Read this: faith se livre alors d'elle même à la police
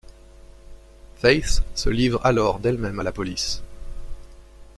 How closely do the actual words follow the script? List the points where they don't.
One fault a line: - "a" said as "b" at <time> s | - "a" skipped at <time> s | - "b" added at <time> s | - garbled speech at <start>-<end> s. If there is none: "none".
none